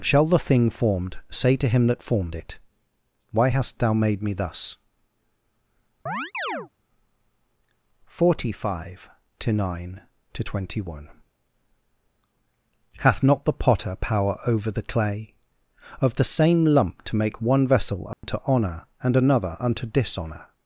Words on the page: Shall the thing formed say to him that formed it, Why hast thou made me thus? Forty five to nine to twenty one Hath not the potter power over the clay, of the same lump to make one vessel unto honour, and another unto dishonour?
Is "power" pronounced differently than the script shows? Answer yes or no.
no